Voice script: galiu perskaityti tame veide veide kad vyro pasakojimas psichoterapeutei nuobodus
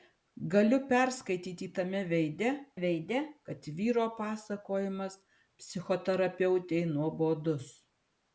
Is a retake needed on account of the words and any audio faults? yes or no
no